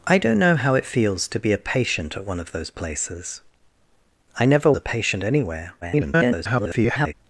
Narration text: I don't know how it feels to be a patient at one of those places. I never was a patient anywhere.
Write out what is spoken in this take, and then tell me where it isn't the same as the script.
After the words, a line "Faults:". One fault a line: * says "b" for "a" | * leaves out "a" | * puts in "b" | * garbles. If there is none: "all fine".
I don't know how it feels to be a patient at one of those places. I never a patient anywhere. [garbled]
Faults:
* leaves out "was"
* garbles